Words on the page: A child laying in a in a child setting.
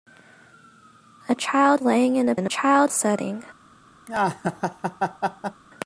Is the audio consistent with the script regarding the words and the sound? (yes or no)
no